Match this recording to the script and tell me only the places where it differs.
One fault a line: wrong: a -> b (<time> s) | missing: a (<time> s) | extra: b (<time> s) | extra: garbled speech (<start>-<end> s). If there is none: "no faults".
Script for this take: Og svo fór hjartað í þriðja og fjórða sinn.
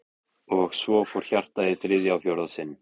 no faults